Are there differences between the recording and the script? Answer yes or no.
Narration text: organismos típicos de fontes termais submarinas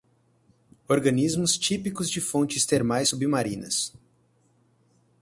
no